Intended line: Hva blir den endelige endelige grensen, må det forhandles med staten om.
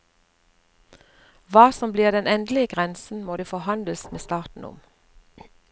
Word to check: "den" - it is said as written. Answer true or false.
true